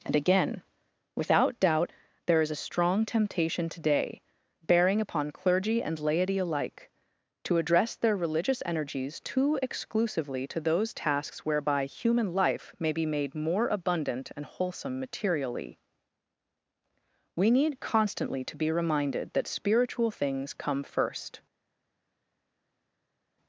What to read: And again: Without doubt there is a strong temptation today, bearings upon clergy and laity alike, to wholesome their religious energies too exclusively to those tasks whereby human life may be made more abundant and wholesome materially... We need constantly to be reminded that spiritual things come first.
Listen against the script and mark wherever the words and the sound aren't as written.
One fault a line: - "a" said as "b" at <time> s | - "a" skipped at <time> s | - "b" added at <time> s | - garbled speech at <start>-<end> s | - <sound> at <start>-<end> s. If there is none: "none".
- "bearings" said as "bearing" at 4.6 s
- "wholesome" said as "address" at 7.6 s